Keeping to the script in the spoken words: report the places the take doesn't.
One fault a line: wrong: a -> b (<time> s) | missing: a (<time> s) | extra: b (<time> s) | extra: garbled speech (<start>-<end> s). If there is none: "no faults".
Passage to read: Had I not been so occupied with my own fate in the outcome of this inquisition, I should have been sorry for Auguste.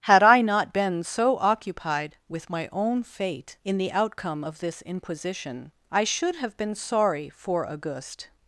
no faults